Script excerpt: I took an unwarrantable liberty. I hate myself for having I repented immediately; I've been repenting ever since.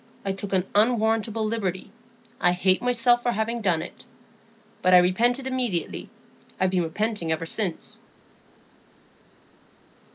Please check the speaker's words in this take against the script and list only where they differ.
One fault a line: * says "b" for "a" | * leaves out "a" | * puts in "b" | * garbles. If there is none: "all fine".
* puts in "done it But"